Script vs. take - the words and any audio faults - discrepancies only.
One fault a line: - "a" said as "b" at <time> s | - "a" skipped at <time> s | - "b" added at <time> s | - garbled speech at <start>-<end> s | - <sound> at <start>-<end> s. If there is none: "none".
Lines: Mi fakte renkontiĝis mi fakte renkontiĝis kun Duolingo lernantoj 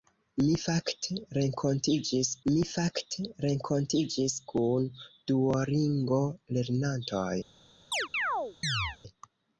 - chirp at 7.9-9.0 s